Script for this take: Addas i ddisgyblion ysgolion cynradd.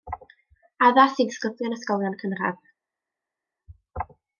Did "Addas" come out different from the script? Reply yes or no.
no